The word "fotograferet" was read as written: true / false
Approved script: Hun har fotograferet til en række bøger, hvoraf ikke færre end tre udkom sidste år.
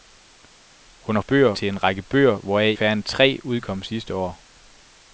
false